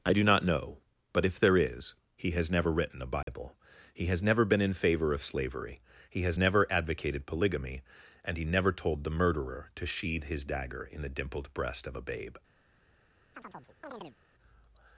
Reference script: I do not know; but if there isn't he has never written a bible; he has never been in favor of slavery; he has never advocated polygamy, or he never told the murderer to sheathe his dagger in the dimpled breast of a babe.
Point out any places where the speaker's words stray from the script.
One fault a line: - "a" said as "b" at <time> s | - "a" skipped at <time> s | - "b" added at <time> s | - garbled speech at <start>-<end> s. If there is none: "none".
- "isn't" said as "is" at 1.6 s
- "or" said as "and" at 8.2 s